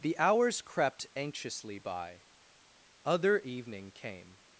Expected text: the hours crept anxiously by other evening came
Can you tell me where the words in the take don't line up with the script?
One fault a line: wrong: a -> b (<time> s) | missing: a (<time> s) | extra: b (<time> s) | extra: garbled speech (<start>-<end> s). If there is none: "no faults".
no faults